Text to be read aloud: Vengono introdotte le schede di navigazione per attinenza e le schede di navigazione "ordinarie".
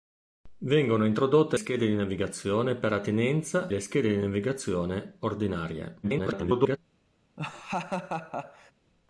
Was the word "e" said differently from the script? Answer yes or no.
yes